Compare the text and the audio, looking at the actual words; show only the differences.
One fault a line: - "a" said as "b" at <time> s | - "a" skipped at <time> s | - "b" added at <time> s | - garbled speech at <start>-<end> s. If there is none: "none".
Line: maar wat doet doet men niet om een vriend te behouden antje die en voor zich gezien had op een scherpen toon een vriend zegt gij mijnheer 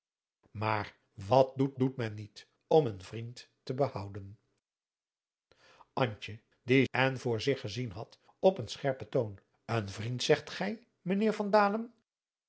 none